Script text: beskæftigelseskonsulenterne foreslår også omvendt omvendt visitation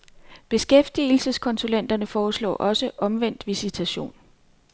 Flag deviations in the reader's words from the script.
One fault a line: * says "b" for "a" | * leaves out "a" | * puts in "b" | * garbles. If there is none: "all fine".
* leaves out "omvendt"